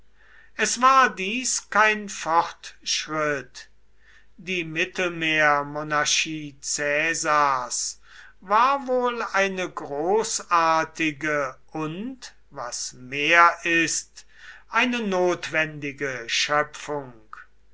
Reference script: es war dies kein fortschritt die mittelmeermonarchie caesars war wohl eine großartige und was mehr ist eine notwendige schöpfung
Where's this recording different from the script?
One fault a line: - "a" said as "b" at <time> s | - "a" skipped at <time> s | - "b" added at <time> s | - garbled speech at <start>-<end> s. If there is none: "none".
none